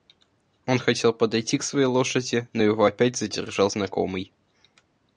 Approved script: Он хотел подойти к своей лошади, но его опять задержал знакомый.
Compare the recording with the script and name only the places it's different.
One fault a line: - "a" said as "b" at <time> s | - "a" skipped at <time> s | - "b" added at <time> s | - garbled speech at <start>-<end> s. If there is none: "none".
none